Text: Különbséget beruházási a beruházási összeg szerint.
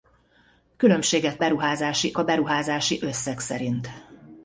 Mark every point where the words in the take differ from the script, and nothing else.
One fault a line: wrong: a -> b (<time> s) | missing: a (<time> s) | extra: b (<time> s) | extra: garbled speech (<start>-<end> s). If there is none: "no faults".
no faults